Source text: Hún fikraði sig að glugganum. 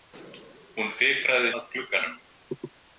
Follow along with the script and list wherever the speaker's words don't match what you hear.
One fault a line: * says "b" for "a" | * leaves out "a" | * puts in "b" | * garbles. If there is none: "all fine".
* leaves out "sig"